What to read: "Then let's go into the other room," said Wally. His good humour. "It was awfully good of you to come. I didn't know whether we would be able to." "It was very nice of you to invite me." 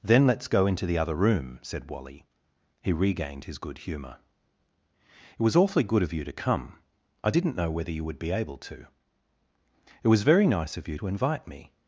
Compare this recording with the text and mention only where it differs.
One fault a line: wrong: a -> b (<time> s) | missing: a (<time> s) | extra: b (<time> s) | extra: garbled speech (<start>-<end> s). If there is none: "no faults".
extra: He regained (2.8 s)
wrong: we -> you (7.9 s)